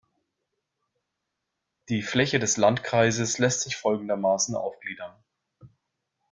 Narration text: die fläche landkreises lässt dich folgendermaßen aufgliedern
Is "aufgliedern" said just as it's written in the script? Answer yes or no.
yes